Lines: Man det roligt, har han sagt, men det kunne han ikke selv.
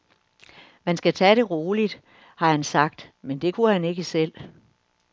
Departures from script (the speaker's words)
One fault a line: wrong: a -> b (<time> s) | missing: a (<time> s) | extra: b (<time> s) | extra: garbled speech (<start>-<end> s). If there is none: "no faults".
extra: skal tage (0.9 s)